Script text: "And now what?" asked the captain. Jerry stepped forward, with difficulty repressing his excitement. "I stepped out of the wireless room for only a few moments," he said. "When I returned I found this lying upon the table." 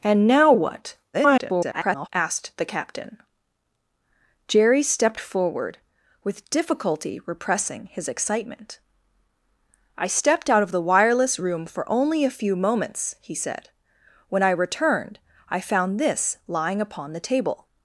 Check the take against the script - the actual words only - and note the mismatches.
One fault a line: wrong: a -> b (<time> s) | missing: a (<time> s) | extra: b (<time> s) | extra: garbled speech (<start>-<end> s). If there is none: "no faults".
extra: garbled speech (1.1-2.1 s)